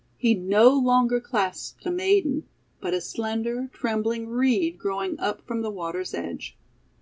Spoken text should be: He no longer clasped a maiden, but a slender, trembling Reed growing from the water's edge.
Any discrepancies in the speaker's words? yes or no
yes